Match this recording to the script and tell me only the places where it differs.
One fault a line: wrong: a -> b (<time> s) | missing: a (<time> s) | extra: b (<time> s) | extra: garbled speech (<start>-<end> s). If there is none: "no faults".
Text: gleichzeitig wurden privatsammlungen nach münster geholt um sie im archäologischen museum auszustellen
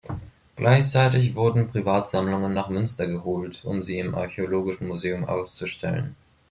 no faults